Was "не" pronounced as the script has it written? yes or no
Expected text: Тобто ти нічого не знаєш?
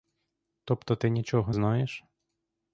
no